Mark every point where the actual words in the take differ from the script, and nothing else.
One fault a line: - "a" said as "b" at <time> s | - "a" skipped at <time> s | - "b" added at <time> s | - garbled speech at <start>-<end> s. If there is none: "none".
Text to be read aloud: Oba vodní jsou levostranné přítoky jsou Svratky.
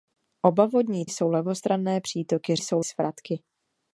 none